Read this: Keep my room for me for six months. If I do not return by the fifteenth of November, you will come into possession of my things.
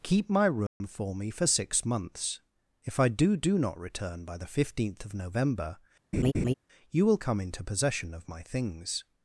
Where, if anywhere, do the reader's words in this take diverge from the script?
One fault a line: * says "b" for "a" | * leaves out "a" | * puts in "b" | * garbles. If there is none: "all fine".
* puts in "do"